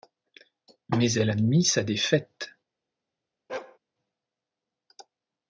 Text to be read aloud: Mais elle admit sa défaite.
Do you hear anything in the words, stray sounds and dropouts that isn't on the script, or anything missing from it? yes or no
yes